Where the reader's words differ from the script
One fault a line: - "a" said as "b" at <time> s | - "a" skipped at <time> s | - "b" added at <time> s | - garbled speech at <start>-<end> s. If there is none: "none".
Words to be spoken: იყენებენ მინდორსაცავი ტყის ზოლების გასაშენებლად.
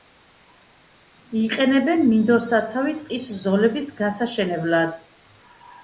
none